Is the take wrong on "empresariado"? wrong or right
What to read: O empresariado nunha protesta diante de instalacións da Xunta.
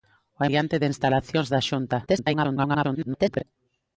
wrong